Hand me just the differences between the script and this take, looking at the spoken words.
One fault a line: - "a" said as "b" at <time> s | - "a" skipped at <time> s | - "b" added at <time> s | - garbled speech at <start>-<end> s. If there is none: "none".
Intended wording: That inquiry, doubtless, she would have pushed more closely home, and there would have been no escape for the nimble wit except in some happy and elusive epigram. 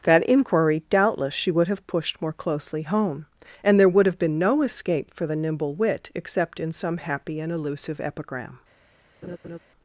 none